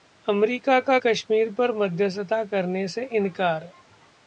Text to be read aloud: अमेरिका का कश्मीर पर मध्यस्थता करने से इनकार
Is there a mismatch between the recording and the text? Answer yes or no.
no